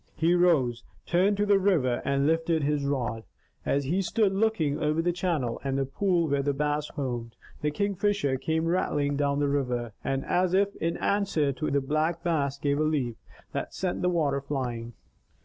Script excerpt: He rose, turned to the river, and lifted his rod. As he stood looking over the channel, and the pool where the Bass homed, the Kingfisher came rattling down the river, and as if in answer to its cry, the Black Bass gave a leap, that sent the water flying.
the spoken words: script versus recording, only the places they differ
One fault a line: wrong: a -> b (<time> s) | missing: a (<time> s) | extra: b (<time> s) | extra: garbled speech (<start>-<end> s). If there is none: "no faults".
missing: its cry (11.7 s)